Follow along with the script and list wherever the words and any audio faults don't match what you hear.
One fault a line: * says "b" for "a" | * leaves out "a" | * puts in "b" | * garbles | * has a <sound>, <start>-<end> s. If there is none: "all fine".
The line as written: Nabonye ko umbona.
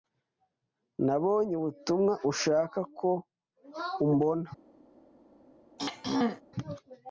* puts in "ubutumwa ushaka"
* has a throat clearing, 5.8-6.4 s